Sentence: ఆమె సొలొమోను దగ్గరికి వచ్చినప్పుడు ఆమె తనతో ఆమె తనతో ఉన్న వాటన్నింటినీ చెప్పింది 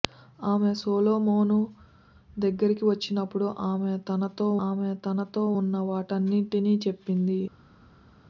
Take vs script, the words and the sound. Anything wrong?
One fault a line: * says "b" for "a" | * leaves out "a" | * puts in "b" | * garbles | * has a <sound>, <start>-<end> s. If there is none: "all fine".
all fine